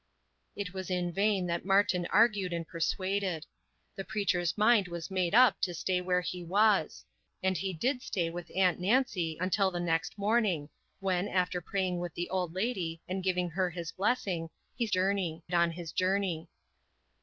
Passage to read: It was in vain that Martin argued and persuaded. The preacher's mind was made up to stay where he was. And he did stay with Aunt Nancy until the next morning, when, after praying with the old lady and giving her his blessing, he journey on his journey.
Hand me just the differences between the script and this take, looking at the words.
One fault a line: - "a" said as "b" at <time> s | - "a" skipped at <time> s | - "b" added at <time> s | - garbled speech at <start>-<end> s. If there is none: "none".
none